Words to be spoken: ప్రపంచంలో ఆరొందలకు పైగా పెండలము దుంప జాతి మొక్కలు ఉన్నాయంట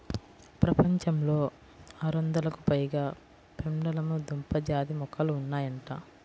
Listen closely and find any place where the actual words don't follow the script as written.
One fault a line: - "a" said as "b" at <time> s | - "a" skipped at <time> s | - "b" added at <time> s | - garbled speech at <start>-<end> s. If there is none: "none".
none